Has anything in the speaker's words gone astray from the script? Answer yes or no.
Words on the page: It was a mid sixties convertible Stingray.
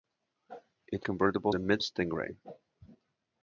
yes